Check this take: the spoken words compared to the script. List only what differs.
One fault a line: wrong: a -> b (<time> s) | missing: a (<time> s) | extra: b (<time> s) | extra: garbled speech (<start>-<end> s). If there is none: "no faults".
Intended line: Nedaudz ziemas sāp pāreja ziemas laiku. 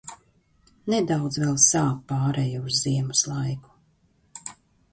wrong: ziemas -> vēl (1.4 s)
extra: uz (2.7 s)